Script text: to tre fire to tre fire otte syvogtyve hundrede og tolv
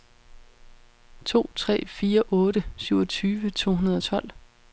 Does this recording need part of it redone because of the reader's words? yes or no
yes